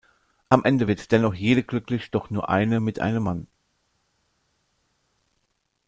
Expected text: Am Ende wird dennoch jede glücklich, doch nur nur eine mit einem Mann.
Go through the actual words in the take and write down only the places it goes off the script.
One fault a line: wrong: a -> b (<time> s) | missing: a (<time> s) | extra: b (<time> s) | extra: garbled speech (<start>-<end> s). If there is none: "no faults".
missing: nur (2.5 s)